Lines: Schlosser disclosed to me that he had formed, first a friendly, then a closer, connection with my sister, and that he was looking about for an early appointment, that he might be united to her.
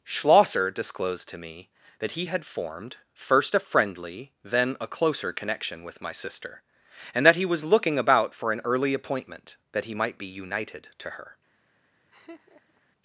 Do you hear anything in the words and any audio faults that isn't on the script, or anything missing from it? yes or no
yes